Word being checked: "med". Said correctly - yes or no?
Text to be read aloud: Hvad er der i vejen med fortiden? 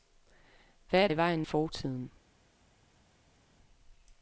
no